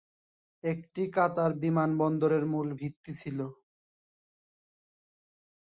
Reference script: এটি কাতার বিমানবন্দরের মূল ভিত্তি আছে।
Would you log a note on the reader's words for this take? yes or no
yes